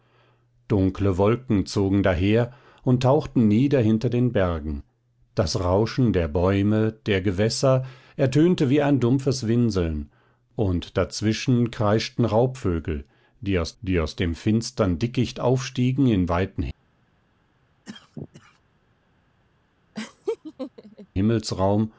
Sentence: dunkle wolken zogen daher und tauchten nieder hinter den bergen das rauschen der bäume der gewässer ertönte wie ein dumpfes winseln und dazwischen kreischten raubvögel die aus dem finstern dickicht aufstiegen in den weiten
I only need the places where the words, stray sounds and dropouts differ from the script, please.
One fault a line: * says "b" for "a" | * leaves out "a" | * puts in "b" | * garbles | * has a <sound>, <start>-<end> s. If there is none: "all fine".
* puts in "die aus"
* leaves out "den"
* has a cough, 17.9-18.6 s
* has a laugh, 19.9-21.1 s